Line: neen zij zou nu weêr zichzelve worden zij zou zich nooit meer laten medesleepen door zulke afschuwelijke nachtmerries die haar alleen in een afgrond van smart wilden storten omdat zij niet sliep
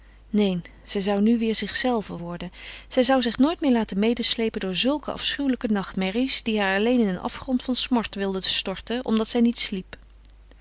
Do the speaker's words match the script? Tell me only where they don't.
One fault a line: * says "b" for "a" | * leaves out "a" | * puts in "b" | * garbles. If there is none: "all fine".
all fine